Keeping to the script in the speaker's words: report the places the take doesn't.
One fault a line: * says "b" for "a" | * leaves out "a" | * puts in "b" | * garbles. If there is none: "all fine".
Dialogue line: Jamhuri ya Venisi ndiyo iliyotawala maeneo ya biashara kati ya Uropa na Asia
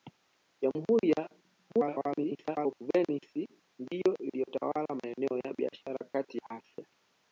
* garbles
* leaves out "ya Uropa na"